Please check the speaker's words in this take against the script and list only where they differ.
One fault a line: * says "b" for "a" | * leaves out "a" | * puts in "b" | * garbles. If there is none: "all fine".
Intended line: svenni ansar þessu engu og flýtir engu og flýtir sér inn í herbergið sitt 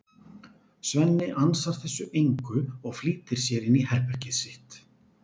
* leaves out "engu og flýtir"